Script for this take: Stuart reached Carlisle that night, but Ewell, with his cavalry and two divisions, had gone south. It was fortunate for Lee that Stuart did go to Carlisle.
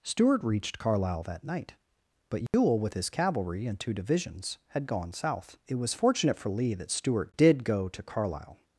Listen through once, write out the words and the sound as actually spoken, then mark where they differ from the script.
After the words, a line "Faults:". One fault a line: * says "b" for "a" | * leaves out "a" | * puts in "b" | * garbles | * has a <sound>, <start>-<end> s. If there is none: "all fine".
Stuart reached Carlisle that night, but Ewell, with his cavalry and two divisions, had gone south. It was fortunate for Lee that Stuart did go to Carlisle.
Faults:
* has a dropout, 2.5-2.5 s